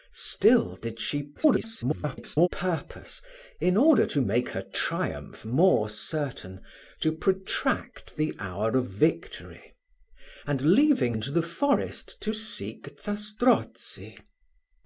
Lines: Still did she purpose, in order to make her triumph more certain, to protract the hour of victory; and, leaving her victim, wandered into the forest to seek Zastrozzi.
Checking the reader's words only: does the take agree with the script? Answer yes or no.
no